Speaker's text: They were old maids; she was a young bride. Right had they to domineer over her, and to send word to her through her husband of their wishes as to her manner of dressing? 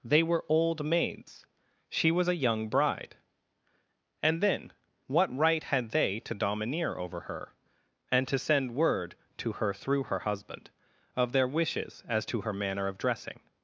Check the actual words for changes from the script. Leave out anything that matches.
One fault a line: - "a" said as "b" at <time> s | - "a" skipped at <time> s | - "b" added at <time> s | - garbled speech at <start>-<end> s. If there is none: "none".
- "And then what" added at 4.2 s